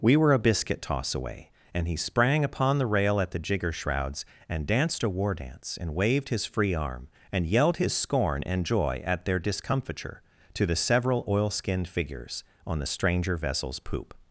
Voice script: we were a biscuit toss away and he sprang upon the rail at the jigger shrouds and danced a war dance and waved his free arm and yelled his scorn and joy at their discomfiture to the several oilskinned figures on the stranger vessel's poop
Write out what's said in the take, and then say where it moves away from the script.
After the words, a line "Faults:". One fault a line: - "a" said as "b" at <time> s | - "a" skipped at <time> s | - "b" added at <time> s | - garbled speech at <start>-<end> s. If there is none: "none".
we were a biscuit toss away and he sprang upon the rail at the jigger shrouds and danced a war dance and waved his free arm and yelled his scorn and joy at their discomfiture to the several oilskinned figures on the stranger vessel's poop
Faults:
none